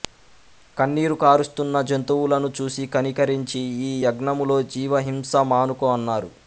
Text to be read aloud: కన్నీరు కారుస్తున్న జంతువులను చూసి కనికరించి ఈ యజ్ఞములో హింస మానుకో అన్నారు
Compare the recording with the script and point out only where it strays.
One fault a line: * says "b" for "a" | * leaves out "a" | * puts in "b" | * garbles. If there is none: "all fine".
* puts in "జీవ"